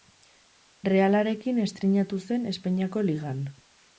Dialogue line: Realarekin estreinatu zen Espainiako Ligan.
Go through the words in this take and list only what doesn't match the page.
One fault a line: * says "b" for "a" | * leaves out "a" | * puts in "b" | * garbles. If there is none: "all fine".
all fine